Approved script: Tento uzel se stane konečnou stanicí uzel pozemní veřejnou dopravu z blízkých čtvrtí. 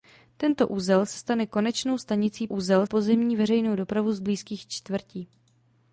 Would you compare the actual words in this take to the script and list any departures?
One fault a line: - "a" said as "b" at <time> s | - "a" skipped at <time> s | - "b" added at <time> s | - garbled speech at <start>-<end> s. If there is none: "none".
none